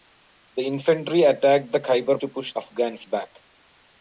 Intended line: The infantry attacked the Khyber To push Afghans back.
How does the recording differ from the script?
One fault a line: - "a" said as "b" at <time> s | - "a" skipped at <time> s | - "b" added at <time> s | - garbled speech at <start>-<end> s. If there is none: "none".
none